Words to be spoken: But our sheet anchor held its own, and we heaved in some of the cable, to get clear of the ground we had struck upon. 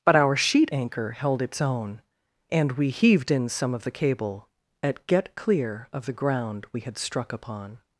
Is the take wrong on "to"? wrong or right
wrong